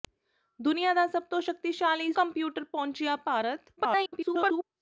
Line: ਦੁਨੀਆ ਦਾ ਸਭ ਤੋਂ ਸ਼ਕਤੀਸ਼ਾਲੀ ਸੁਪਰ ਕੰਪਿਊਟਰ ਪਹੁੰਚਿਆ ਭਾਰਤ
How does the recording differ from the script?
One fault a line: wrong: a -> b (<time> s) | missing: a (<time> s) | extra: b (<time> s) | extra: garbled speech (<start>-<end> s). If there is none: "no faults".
missing: ਸੁਪਰ (2.1 s)
extra: garbled speech (3.8-4.6 s)